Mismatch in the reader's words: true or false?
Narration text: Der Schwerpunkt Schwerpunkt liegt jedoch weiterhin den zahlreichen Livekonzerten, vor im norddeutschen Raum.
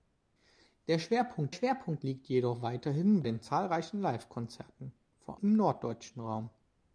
false